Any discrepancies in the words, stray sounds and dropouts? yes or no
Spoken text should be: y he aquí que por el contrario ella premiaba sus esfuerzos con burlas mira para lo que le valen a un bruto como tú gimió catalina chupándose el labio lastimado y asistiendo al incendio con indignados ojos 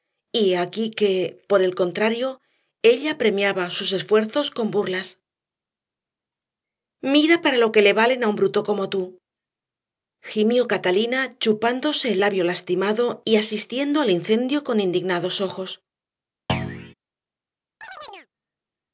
yes